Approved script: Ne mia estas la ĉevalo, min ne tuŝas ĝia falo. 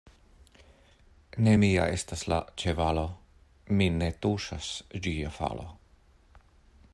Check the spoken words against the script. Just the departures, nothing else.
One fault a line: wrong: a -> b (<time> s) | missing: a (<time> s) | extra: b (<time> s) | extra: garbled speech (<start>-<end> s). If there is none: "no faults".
no faults